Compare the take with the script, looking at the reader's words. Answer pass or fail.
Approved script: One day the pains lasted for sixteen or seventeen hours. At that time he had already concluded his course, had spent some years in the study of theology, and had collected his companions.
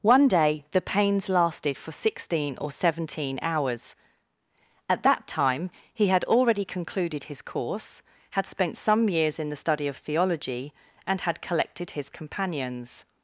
pass